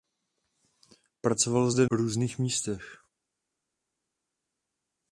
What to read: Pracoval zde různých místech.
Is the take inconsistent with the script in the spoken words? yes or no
no